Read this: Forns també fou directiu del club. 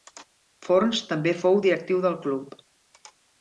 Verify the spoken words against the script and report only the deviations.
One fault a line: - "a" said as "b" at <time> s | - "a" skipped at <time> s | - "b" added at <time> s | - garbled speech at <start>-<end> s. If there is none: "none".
none